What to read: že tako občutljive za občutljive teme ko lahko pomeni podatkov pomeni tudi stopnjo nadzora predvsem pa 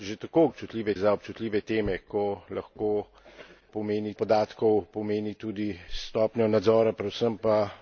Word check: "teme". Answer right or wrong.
right